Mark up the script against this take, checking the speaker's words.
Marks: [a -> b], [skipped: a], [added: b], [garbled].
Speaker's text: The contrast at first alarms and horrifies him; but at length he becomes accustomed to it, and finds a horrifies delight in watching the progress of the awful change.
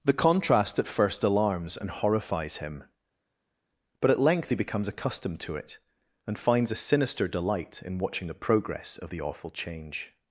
The contrast at first alarms and horrifies him; but at length he becomes accustomed to it, and finds a [horrifies -> sinister] delight in watching the progress of the awful change.